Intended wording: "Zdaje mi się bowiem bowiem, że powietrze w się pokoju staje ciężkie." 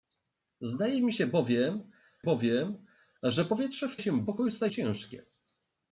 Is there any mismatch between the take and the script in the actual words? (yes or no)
no